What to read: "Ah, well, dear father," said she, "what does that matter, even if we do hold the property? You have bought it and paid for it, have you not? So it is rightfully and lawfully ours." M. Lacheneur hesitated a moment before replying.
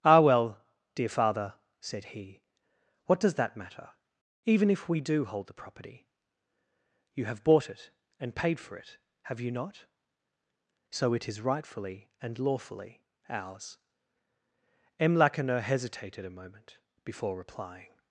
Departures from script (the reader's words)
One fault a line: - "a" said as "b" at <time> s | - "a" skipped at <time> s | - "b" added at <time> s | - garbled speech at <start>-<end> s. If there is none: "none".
- "she" said as "he" at 2.0 s